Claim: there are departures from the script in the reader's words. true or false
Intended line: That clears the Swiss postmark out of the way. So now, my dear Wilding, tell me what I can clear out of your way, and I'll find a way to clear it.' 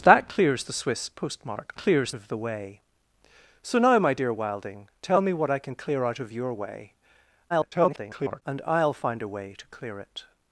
true